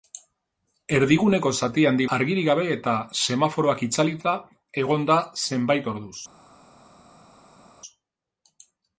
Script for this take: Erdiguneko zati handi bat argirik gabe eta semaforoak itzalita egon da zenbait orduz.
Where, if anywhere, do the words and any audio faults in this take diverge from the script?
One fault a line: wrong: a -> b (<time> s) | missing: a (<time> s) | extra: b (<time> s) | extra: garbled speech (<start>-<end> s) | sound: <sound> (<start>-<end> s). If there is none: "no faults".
missing: bat (2.1 s)